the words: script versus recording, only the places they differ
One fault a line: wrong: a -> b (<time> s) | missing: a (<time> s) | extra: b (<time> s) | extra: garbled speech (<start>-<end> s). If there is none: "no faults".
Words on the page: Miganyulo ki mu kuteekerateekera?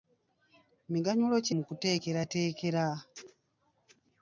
no faults